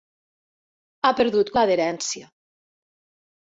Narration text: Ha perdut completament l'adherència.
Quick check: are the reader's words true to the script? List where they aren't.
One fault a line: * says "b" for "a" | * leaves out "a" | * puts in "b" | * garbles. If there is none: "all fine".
* leaves out "completament"